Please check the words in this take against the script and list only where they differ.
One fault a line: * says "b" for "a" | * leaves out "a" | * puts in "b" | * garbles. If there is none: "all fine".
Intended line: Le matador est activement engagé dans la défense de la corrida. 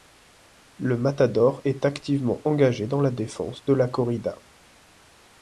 all fine